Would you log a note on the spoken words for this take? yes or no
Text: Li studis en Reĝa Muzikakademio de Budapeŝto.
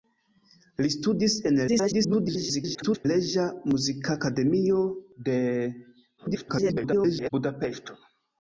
yes